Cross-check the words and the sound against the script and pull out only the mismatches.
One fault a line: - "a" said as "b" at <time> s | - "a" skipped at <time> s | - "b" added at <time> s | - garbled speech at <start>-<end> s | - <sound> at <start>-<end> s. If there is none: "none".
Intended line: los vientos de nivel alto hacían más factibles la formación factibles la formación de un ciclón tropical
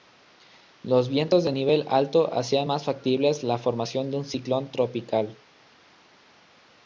- "factibles la formación" skipped at 4.1 s